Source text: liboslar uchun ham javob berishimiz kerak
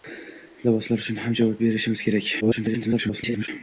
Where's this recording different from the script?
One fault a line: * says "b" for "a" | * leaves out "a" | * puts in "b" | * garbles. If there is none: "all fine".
* garbles